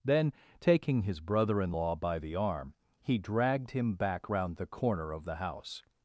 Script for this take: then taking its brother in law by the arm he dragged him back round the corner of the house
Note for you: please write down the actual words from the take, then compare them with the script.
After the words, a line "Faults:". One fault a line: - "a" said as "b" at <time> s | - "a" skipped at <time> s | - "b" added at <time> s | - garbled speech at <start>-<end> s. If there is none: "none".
then taking his brother in law by the arm he dragged him back round the corner of the house
Faults:
- "its" said as "his" at 1.0 s